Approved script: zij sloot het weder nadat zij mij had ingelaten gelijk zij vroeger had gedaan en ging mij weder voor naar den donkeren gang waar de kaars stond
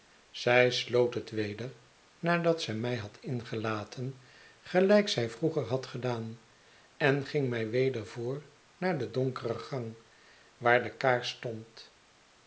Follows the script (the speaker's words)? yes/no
yes